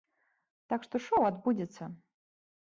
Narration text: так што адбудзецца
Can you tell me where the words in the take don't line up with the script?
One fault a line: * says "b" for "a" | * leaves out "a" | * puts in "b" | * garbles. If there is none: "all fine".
* puts in "шоў"